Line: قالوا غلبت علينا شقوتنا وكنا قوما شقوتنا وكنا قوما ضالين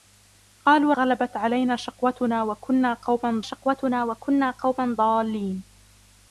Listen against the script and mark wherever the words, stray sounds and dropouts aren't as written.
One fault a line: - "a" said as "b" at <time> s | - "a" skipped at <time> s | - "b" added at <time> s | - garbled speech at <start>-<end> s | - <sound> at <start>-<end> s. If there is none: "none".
none